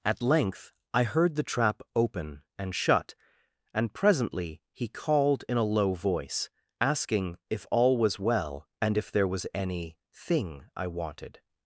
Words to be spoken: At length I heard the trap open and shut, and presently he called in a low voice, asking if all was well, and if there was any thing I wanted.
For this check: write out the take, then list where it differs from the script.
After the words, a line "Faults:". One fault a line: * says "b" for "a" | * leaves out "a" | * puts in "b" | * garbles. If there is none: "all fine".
At length I heard the trap open and shut, and presently he called in a low voice, asking if all was well, and if there was any thing I wanted.
Faults:
all fine